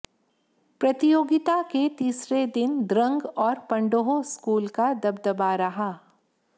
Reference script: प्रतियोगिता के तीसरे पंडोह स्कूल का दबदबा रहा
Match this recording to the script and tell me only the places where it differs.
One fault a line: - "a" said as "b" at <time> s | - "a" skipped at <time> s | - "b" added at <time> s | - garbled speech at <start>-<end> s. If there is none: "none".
- "दिन द्रंग और" added at 2.5 s